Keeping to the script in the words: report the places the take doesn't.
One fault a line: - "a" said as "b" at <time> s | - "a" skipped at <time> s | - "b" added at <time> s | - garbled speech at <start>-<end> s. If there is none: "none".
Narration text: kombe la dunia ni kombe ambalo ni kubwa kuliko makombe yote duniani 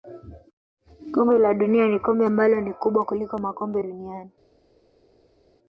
- "yote" skipped at 3.8 s